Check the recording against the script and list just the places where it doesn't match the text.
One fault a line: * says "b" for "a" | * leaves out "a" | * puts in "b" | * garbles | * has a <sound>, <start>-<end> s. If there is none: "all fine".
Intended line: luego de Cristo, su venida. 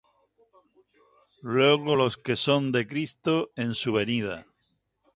* puts in "los que son"
* puts in "en"